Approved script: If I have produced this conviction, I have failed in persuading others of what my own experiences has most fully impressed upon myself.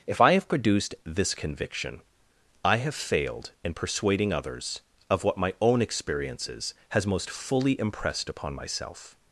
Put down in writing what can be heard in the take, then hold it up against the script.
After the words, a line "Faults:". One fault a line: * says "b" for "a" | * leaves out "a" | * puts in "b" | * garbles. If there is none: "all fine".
If I have produced this conviction, I have failed in persuading others of what my own experiences has most fully impressed upon myself.
Faults:
all fine